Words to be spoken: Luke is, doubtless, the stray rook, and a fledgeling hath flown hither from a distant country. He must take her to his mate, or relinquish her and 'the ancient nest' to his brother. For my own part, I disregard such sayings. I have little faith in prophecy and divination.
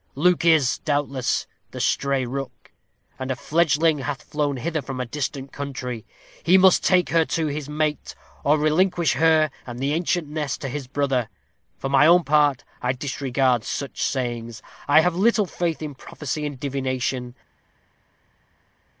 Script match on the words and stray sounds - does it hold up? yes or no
yes